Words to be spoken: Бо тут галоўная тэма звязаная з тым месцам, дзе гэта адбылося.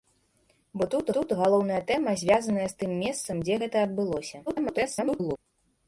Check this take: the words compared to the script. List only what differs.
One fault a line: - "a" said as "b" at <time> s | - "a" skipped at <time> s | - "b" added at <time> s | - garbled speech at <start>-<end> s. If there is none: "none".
- "тут" added at 1.2 s
- garbled speech at 4.5-5.4 s